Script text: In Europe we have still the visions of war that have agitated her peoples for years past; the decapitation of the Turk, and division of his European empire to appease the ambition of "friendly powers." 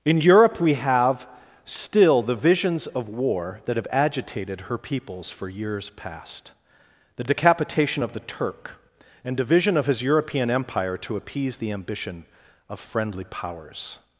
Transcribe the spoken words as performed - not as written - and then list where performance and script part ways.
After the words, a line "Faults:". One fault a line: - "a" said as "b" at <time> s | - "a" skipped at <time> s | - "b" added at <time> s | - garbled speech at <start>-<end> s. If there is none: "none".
In Europe we have still the visions of war that have agitated her peoples for years past; the decapitation of the Turk, and division of his European empire to appease the ambition of "friendly powers."
Faults:
none